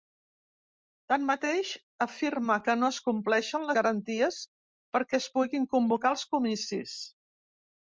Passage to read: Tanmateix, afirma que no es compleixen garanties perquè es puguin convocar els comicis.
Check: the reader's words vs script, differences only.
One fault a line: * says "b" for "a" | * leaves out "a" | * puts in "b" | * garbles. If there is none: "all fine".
all fine